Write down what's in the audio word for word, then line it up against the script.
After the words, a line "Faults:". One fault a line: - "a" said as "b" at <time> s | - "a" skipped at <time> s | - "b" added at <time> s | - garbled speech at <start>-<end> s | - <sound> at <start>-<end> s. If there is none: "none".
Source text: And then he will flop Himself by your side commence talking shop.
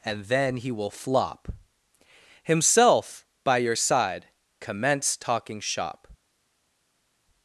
And then he will flop Himself by your side commence talking shop.
Faults:
none